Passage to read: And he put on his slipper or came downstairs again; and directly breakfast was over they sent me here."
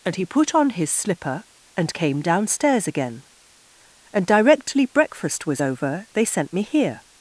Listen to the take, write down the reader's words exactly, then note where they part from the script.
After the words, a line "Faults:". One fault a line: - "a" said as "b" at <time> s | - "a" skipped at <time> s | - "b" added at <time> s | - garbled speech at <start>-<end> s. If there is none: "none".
And he put on his slipper and came downstairs again; and directly breakfast was over they sent me here."
Faults:
- "or" said as "and" at 1.8 s